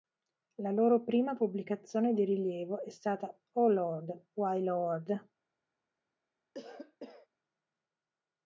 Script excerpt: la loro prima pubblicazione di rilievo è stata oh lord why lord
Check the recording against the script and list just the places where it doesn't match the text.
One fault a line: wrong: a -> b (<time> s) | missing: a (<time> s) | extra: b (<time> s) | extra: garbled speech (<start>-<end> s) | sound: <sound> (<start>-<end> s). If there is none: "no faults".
sound: cough (6.5-7.3 s)